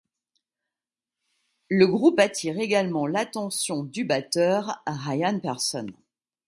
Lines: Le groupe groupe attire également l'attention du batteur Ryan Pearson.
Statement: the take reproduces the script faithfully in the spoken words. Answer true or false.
false